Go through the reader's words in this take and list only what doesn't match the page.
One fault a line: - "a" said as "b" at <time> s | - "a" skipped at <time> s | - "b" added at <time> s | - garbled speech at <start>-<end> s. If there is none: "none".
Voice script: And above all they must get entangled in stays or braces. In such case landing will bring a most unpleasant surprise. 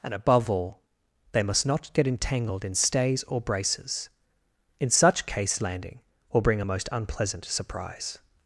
- "not" added at 1.6 s